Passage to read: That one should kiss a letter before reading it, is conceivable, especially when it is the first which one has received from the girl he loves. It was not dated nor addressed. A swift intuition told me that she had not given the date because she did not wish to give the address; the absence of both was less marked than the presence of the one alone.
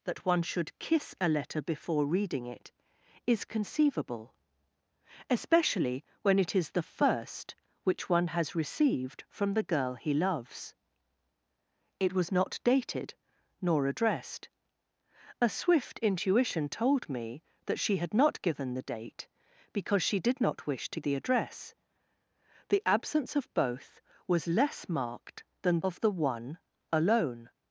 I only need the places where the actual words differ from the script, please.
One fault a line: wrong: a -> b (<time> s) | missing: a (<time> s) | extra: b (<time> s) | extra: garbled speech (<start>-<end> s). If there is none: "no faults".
missing: give (21.0 s)
missing: the presence (25.8 s)